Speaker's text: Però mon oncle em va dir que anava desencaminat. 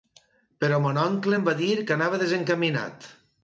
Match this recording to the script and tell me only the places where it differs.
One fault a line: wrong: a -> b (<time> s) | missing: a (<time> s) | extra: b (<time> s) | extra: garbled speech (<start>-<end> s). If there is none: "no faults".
no faults